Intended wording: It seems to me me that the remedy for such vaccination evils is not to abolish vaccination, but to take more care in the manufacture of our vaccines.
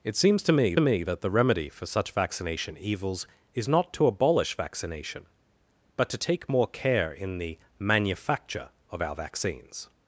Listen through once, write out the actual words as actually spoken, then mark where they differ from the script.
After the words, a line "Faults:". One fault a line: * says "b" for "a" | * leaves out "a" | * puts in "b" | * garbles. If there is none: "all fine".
It seems to me me that the remedy for such vaccination evils is not to abolish vaccination, but to take more care in the manufacture of our vaccines.
Faults:
all fine